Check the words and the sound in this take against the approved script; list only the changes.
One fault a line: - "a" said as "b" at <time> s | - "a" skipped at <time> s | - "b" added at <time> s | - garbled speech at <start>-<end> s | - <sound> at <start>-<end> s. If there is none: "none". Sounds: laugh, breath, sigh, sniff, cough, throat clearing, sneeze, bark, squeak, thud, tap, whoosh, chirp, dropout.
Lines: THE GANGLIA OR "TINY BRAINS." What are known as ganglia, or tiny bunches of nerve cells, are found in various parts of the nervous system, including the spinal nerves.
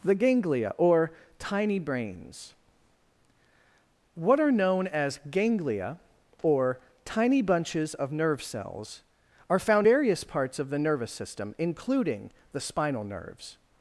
- "in" skipped at 9.9 s